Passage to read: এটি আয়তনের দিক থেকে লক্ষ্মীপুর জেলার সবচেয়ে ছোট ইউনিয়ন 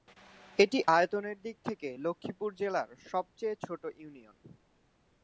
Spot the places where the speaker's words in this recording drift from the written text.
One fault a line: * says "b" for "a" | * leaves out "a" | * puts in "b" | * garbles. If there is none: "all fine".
all fine